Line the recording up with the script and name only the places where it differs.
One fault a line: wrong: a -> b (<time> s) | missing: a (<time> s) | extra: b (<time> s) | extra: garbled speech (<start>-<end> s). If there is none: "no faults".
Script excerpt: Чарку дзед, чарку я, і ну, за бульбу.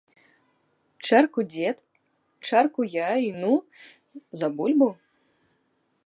no faults